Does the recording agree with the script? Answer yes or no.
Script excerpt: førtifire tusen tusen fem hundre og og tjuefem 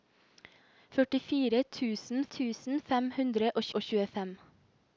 yes